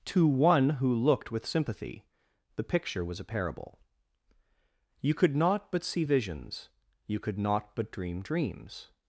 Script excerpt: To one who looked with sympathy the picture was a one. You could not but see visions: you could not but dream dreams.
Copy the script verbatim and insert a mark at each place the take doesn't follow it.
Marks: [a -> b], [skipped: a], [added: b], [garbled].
To one who looked with sympathy the picture was a [one. -> parable] You could not but see visions: you could not but dream dreams.